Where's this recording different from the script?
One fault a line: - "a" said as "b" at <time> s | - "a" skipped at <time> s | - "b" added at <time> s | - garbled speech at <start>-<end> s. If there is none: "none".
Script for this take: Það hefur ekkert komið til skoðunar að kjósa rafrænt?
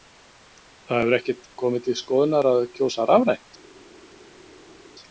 none